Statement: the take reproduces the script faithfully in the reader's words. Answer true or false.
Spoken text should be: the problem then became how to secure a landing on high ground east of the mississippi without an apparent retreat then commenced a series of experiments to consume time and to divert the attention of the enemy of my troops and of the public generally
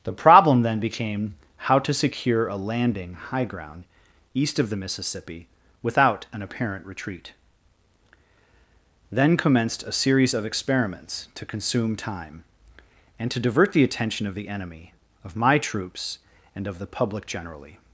false